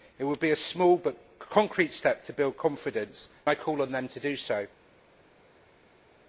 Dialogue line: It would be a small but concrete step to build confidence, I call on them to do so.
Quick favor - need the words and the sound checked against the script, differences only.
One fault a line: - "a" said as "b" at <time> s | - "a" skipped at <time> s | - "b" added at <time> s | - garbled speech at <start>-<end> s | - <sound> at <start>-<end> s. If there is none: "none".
none